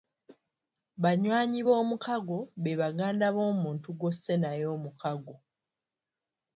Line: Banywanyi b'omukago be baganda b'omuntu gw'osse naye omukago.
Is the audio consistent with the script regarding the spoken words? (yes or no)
yes